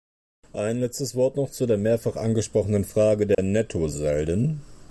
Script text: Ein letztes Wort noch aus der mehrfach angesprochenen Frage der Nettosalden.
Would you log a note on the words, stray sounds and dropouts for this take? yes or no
yes